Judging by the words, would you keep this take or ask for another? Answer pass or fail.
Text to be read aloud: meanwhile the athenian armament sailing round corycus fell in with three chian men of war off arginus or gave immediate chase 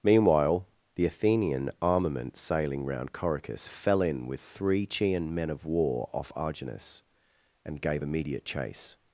fail